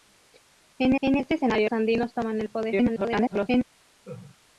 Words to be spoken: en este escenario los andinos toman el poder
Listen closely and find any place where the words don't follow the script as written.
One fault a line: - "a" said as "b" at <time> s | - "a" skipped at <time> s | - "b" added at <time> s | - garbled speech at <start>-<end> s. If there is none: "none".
- "en" added at 1.0 s
- "los" skipped at 1.7 s
- garbled speech at 2.7-3.6 s